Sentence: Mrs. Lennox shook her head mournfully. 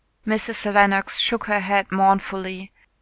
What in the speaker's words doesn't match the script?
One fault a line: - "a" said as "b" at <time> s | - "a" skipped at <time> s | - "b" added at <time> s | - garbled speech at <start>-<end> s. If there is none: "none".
none